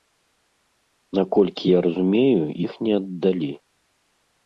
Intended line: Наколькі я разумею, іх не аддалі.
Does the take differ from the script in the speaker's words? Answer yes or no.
no